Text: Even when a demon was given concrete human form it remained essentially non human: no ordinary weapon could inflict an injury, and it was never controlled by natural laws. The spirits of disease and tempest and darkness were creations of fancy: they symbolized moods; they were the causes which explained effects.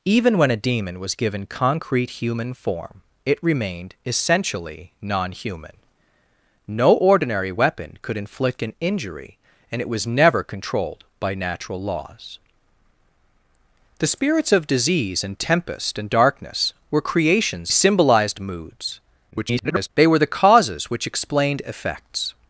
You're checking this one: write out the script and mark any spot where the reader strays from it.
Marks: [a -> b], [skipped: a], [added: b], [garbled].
Even when a demon was given concrete human form it remained essentially non human: no ordinary weapon could inflict an injury, and it was never controlled by natural laws. The spirits of disease and tempest and darkness were creations [skipped: of fancy: they] symbolized moods; [garbled] they were the causes which explained effects.